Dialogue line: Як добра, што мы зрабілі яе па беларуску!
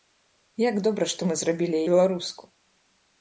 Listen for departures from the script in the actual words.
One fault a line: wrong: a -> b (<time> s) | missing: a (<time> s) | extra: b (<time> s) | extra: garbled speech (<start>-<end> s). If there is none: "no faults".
missing: яе па (1.8 s)